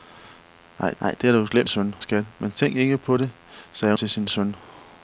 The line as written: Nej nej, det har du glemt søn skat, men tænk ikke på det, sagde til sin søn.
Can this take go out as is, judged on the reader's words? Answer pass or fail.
pass